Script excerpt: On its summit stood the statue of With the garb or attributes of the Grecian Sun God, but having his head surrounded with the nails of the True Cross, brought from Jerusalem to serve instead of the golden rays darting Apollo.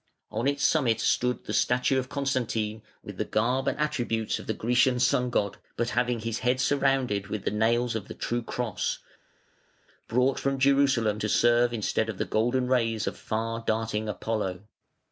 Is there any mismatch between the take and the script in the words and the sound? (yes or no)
yes